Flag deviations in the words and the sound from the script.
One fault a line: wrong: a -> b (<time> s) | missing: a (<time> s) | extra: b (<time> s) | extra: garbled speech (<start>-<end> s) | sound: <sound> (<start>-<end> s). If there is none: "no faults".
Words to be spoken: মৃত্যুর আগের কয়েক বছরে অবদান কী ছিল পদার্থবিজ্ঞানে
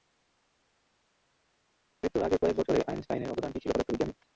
extra: আইনস্টাইনের (2.9 s)